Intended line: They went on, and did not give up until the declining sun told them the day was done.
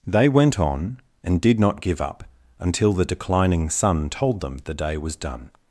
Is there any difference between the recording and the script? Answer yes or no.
no